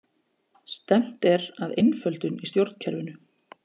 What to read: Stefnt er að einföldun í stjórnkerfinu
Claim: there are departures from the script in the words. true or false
false